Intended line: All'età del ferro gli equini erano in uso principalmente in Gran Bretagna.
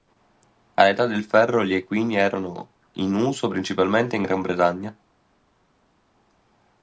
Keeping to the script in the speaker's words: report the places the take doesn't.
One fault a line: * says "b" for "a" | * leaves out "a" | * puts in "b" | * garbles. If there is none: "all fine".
all fine